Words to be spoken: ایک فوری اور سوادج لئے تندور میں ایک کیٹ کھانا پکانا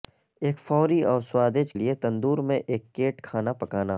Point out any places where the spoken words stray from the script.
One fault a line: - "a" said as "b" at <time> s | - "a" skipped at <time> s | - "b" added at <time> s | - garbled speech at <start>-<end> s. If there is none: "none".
none